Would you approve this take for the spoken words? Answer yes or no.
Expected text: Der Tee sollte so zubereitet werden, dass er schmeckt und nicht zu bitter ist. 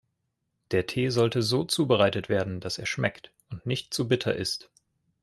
yes